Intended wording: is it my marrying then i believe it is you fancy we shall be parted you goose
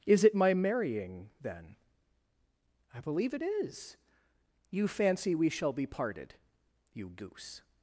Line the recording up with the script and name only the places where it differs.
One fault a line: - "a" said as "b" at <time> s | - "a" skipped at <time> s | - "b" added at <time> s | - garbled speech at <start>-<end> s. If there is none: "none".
none